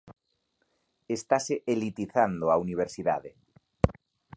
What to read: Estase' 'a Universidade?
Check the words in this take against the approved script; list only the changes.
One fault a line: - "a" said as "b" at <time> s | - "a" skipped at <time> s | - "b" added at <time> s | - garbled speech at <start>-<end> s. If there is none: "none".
- "elitizando" added at 1.7 s